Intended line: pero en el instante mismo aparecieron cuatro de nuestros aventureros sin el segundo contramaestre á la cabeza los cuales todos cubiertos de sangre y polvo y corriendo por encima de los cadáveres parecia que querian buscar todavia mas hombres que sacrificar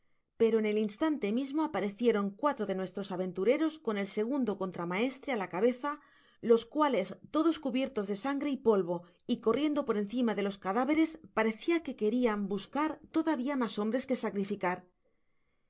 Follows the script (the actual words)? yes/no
no